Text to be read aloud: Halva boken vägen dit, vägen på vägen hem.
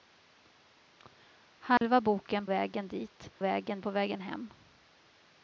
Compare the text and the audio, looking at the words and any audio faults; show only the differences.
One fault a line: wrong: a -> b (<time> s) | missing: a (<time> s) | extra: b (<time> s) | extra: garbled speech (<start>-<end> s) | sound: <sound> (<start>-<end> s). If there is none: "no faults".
sound: dropout (1.8-1.8 s)